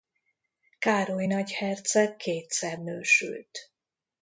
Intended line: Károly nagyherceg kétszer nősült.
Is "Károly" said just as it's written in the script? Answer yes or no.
yes